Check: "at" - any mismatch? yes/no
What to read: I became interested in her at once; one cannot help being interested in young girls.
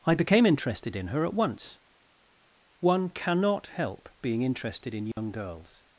no